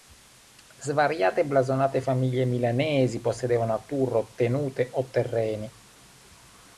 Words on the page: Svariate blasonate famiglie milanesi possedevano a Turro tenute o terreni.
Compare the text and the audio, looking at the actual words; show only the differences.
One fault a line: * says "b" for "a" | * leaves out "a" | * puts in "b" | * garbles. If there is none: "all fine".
all fine